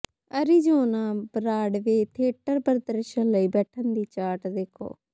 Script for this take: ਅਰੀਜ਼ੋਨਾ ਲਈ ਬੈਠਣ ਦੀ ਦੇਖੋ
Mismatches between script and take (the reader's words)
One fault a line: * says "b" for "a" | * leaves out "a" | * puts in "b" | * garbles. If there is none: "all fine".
* puts in "ਬਰਾਡਵੇ ਥੀਏਟਰ ਪ੍ਰਦਰਸ਼ਨ"
* puts in "ਚਾਰਟ"